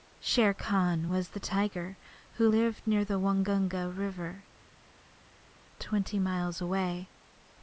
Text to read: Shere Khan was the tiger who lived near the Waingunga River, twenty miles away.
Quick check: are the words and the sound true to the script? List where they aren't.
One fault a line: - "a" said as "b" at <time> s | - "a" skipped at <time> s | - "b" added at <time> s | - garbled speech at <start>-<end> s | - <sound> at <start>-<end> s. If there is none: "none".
none